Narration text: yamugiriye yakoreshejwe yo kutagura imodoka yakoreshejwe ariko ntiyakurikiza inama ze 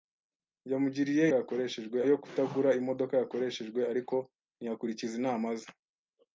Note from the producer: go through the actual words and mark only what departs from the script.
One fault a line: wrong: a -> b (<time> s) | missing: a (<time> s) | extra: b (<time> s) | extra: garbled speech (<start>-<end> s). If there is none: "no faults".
no faults